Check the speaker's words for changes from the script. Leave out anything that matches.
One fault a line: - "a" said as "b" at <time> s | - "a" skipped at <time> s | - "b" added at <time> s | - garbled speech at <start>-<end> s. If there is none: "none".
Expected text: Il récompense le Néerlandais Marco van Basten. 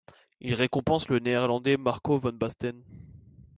none